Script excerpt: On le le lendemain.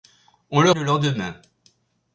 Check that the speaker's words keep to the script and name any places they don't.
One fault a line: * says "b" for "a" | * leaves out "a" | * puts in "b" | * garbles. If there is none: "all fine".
all fine